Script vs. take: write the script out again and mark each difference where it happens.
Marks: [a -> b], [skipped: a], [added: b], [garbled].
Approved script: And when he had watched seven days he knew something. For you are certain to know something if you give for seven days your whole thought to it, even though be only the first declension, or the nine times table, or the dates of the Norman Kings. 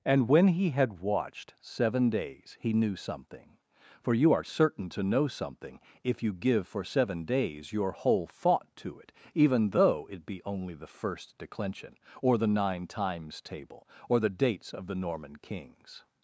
And when he had watched seven days he knew something. For you are certain to know something if you give for seven days your whole thought to it, even though [added: it] be only the first declension, or the nine times table, or the dates of the Norman Kings.